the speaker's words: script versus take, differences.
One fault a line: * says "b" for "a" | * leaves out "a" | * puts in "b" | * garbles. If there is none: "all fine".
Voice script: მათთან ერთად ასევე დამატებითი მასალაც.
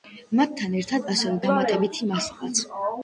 all fine